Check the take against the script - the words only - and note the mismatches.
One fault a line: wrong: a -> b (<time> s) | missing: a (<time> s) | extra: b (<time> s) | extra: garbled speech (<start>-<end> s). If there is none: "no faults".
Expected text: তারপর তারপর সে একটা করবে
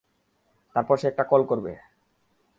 missing: তারপর (0.9 s)
extra: কল (1.2 s)